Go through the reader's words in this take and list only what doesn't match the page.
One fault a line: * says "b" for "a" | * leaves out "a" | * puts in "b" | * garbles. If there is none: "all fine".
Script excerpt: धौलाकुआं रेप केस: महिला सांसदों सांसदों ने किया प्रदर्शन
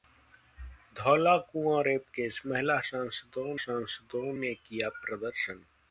all fine